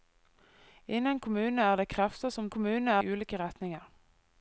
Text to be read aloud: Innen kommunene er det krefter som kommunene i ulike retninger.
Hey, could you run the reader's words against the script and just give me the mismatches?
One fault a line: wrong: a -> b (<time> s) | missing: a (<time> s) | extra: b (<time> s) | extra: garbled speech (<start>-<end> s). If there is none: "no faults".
no faults